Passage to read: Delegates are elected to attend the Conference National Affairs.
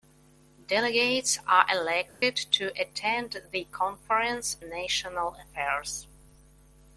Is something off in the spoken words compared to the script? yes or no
no